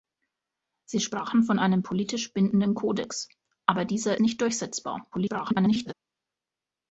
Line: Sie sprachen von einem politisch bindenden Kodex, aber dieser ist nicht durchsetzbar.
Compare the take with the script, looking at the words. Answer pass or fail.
fail